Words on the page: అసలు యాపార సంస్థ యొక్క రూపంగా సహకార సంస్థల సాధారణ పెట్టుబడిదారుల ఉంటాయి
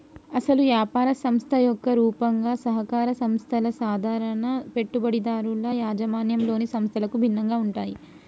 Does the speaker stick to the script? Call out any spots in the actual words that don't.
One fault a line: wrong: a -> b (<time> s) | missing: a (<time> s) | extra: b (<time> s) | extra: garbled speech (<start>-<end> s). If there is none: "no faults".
extra: యాజమాన్యంలోని సంస్థలకు భిన్నంగా (5.8 s)